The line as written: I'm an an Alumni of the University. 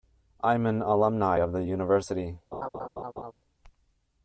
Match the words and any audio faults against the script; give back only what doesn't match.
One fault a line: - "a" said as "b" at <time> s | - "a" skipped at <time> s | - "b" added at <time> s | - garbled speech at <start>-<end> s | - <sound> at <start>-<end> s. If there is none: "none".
- "an" skipped at 0.8 s
- laugh at 2.5-3.3 s